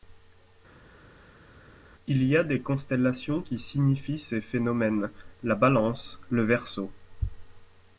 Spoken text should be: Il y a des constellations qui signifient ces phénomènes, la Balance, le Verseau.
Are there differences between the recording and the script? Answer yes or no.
no